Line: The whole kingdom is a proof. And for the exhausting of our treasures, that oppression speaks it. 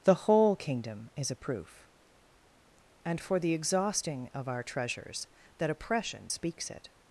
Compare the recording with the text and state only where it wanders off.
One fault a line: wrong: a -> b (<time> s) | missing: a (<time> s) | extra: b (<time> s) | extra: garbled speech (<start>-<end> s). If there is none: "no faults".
no faults